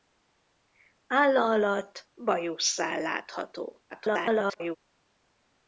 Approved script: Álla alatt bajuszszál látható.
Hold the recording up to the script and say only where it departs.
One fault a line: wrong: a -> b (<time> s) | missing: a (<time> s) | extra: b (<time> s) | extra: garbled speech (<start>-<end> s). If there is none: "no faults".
extra: garbled speech (3.9-4.8 s)